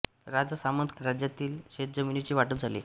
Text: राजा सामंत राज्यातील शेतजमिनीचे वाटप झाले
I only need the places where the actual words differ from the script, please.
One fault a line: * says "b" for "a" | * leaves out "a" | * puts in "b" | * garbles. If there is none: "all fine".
all fine